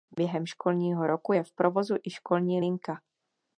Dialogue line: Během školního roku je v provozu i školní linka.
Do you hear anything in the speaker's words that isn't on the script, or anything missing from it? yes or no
no